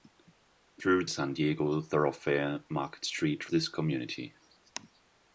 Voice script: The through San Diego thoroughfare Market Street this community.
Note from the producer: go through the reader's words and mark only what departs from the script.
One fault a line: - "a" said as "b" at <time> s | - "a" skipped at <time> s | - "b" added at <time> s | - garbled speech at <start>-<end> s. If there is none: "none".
none